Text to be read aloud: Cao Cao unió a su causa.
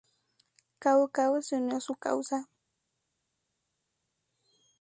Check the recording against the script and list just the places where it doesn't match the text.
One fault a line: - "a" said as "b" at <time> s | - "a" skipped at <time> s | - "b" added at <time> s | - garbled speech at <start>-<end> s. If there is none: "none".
- "se" added at 1.4 s